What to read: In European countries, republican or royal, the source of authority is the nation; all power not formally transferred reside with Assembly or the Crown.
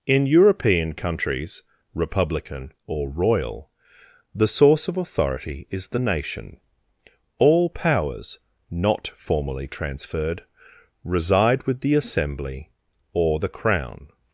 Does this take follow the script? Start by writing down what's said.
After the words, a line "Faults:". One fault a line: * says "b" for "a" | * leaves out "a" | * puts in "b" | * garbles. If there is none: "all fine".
In European countries, republican or royal, the source of authority is the nation; all powers not formally transferred reside with the Assembly or the Crown.
Faults:
* says "powers" for "power"
* puts in "the"